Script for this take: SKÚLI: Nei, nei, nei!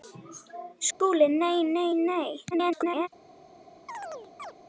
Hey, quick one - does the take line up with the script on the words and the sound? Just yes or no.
no